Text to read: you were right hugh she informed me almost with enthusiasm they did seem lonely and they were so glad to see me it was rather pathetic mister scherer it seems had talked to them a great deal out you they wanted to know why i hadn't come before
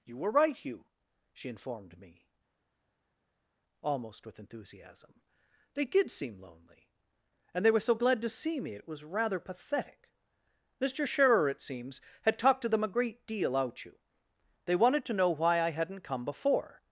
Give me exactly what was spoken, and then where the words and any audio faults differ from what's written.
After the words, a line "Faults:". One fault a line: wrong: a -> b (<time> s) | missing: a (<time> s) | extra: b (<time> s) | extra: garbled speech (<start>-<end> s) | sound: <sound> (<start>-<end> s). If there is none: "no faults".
you were right hugh she informed me almost with enthusiasm they did seem lonely and they were so glad to see me it was rather pathetic mister scherer it seems had talked to them a great deal out you they wanted to know why i hadn't come before
Faults:
no faults